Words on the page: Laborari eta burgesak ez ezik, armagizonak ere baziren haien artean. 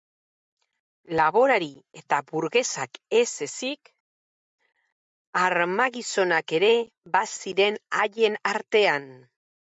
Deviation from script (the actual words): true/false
false